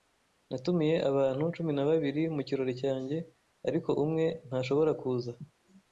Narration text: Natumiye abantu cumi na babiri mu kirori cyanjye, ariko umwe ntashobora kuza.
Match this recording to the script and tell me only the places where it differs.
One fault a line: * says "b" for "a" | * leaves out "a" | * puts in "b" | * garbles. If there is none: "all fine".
all fine